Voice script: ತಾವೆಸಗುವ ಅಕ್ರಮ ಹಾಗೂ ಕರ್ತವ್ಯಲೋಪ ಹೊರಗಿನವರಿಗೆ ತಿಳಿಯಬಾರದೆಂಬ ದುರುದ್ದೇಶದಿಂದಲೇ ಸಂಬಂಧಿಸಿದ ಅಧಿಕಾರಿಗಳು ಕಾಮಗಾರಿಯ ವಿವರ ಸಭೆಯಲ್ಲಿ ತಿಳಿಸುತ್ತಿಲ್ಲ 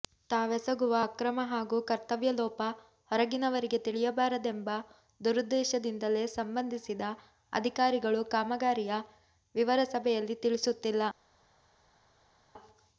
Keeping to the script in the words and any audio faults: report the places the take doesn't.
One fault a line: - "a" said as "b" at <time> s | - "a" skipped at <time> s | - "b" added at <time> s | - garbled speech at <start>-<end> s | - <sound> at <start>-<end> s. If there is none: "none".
none